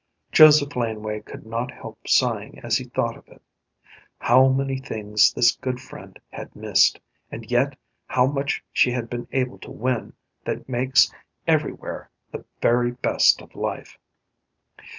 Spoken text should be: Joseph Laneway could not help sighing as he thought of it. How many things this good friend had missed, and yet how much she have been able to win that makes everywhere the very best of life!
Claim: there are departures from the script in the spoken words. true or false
true